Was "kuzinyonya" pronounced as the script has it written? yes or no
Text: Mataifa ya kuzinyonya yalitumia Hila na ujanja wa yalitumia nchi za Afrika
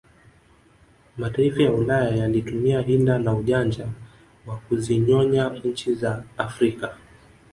no